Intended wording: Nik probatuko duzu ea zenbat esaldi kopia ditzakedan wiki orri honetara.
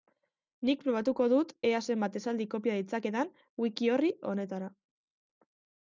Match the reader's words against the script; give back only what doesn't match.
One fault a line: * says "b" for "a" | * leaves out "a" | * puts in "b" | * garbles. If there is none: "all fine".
* says "dut" for "duzu"